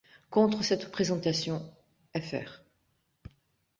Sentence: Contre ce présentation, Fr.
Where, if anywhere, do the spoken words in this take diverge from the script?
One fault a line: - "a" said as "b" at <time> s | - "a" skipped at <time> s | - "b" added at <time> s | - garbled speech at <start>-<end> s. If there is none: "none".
- "ce" said as "cette" at 0.6 s